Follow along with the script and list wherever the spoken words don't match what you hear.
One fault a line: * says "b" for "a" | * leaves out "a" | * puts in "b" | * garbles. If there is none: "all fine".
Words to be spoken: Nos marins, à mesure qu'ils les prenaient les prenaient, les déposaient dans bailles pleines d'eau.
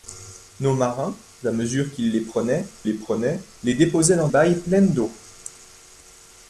all fine